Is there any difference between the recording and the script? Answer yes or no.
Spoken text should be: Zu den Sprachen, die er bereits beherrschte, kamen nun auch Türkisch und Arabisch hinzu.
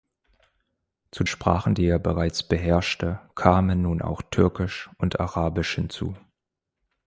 yes